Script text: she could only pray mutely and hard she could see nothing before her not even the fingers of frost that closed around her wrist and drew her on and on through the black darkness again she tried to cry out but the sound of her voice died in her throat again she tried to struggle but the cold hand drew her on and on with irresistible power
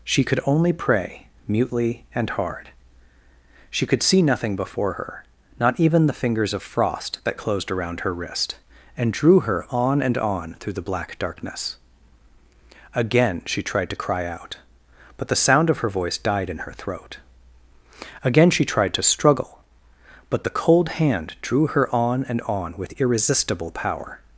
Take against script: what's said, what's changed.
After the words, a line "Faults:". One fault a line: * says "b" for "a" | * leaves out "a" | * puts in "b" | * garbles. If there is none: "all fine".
she could only pray mutely and hard she could see nothing before her not even the fingers of frost that closed around her wrist and drew her on and on through the black darkness again she tried to cry out but the sound of her voice died in her throat again she tried to struggle but the cold hand drew her on and on with irresistible power
Faults:
all fine